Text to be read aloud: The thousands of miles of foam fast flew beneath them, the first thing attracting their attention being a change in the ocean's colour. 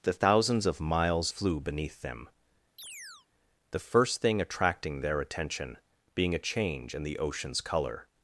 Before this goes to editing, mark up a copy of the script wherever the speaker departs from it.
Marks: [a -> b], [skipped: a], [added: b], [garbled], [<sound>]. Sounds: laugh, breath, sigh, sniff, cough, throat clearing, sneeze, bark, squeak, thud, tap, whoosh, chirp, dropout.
The thousands of miles [skipped: of foam fast] flew beneath them, [chirp] the first thing attracting their attention being a change in the ocean's colour.